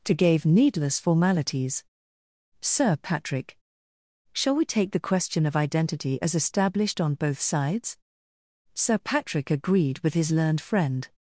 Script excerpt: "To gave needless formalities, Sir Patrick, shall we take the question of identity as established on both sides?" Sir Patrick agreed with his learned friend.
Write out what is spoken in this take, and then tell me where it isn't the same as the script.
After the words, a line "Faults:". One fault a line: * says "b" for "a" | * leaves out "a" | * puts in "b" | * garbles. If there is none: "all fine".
"To gave needless formalities, Sir Patrick, shall we take the question of identity as established on both sides?" Sir Patrick agreed with his learned friend.
Faults:
all fine